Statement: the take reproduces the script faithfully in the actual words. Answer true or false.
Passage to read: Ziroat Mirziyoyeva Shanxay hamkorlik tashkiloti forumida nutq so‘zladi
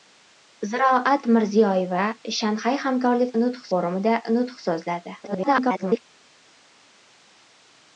false